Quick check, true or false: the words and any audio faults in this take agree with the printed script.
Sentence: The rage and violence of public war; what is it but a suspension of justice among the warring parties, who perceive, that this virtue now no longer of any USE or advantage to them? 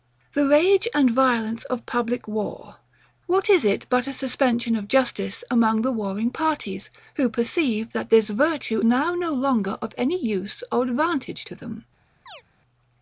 false